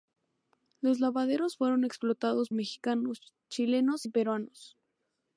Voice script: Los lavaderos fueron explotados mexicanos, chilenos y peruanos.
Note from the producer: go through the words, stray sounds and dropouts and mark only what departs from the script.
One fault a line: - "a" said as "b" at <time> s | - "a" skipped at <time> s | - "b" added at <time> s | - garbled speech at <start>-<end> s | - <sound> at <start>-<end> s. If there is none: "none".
none